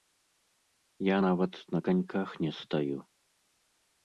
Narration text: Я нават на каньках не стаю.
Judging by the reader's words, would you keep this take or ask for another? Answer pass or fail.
pass